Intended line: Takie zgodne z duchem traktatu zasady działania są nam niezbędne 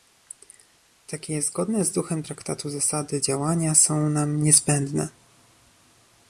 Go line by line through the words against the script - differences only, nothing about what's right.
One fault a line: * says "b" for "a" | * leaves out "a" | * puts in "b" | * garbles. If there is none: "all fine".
all fine